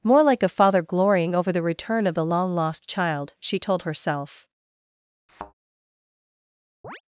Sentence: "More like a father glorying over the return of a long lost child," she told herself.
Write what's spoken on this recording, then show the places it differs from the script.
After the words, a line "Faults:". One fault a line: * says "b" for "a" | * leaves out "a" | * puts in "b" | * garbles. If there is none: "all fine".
"More like a father glorying over the return of the long lost child," she told herself.
Faults:
* says "the" for "a"